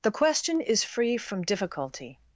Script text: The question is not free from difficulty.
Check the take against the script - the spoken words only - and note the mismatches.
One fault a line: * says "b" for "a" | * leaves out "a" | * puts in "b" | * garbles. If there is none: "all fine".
* leaves out "not"